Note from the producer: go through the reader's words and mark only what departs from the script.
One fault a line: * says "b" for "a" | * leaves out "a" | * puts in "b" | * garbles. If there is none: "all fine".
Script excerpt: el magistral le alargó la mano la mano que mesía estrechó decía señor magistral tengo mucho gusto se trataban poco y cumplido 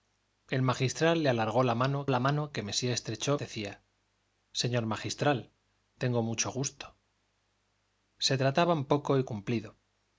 all fine